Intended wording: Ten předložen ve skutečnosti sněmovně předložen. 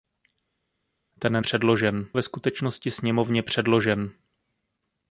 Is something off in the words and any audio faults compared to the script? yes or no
no